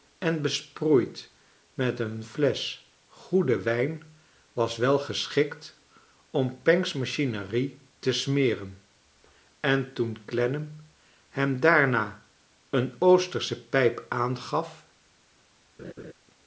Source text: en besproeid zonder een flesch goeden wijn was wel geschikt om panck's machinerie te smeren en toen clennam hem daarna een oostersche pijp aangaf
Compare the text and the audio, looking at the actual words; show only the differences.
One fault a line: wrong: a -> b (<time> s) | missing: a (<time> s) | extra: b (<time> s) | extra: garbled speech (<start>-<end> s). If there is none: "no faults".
wrong: zonder -> met (1.7 s)